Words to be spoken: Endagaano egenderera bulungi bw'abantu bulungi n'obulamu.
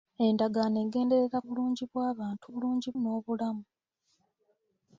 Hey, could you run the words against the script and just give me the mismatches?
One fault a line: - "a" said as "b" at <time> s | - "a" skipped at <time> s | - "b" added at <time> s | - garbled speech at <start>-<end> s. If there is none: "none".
none